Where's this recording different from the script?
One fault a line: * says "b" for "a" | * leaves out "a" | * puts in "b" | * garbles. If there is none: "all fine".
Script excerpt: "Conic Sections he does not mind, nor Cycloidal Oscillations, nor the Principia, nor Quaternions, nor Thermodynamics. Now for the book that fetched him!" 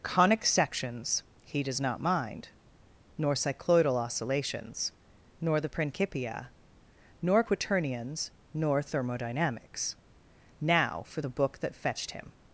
all fine